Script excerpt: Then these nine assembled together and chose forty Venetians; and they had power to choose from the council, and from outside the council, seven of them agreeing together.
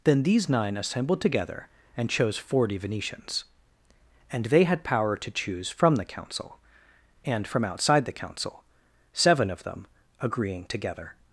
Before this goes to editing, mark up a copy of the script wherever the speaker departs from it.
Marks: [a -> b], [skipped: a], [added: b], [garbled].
Then these nine assembled together and chose forty Venetians; and they had power to choose from the council, and from outside the council, seven of them agreeing together.